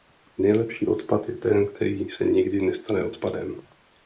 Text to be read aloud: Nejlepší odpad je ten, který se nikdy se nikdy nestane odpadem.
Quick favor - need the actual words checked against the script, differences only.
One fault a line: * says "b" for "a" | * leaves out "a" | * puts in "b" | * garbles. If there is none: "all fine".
* leaves out "se nikdy"